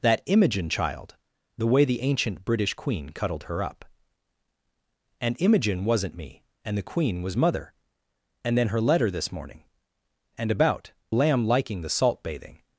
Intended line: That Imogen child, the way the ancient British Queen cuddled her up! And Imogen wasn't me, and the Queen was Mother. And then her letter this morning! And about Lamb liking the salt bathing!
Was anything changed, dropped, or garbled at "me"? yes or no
no